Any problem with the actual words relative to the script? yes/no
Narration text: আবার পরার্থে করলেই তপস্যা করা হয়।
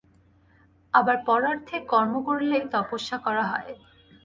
yes